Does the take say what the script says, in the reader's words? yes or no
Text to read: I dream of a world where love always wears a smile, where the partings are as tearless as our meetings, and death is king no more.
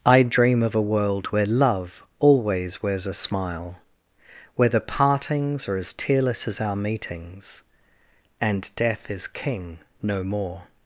yes